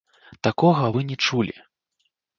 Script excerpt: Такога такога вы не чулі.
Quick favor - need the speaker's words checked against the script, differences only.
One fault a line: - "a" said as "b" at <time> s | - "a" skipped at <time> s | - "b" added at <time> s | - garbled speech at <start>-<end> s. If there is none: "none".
- "такога" skipped at 0.9 s